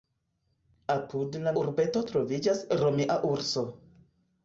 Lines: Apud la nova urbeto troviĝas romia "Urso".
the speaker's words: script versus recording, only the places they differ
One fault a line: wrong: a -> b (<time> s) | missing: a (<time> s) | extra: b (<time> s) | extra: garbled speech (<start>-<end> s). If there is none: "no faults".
missing: nova (1.5 s)